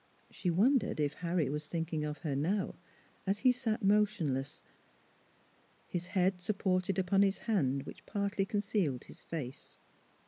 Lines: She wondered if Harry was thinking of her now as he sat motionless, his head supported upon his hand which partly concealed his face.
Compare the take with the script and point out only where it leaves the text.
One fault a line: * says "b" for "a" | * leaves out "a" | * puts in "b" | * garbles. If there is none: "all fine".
all fine